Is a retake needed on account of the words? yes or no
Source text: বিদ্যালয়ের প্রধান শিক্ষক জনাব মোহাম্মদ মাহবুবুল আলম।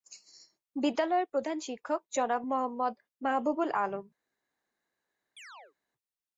no